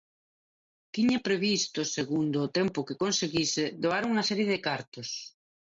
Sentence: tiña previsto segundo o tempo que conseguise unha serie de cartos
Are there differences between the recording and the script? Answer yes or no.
yes